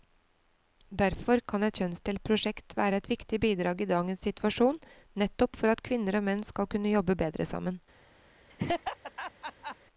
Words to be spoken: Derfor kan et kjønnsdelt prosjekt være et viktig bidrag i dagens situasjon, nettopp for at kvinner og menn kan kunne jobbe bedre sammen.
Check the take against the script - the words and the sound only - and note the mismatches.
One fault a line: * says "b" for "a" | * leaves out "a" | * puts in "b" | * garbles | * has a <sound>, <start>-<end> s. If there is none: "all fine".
* says "skal" for "kan"
* has a laugh, 8.5-9.8 s